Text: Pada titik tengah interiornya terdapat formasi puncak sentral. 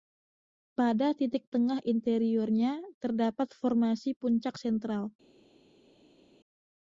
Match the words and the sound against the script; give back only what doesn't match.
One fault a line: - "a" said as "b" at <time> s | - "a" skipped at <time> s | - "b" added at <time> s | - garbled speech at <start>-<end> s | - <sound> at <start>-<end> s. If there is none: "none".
none